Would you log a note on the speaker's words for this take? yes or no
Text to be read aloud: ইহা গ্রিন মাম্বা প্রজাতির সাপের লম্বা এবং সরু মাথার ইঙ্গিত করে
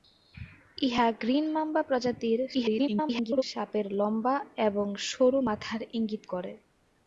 yes